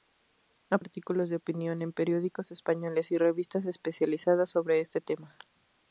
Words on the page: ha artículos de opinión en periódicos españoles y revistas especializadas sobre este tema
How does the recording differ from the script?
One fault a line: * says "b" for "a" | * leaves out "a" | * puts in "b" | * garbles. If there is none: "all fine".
all fine